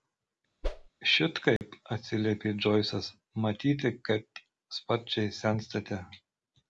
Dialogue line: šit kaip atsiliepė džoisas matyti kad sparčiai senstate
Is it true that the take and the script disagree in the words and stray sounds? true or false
true